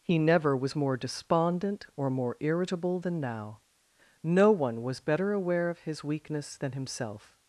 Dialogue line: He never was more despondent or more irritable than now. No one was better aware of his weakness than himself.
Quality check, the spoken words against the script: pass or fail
pass